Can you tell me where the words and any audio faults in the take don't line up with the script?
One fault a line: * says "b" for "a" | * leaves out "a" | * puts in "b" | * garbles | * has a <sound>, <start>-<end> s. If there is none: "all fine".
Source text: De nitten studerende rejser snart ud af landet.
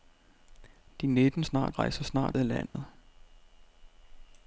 * says "snart" for "studerende"
* leaves out "ud"
* has a dropout, 2.7-2.7 s